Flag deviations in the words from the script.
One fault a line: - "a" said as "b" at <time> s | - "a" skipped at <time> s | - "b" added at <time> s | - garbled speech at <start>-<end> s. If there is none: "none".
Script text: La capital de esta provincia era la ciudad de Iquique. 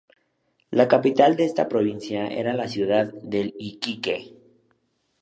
none